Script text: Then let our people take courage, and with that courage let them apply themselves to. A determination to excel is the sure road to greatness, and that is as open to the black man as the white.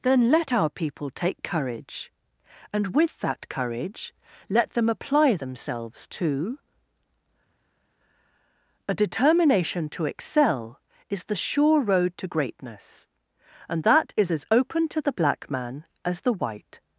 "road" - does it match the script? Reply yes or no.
yes